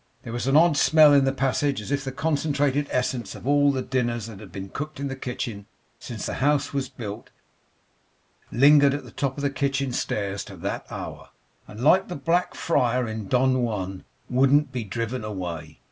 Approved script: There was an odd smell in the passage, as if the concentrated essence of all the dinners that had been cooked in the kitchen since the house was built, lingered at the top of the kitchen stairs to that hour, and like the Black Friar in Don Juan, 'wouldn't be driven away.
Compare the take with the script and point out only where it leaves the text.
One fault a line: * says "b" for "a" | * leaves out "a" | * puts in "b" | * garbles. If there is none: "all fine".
all fine